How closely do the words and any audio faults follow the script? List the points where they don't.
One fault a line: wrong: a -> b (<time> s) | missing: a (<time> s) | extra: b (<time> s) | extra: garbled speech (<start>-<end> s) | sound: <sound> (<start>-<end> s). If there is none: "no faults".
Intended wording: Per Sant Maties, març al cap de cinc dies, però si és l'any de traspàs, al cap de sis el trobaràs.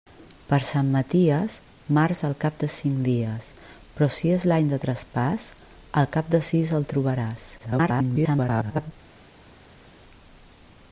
extra: garbled speech (7.6-8.9 s)